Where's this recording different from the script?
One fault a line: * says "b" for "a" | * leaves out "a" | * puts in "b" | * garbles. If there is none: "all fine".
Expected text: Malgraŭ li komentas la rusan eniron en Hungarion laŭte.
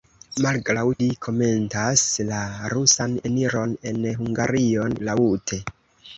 all fine